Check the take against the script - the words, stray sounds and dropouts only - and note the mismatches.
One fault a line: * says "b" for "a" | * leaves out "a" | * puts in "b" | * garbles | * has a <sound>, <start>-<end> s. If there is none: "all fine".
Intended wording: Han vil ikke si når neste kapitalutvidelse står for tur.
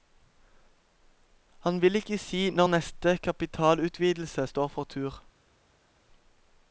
all fine